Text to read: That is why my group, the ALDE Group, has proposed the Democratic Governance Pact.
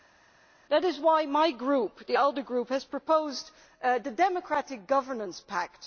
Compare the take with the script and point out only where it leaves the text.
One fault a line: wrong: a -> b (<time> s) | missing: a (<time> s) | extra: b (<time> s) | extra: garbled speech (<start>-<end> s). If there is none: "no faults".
no faults